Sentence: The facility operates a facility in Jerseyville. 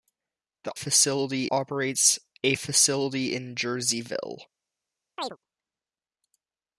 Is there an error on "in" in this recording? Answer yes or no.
no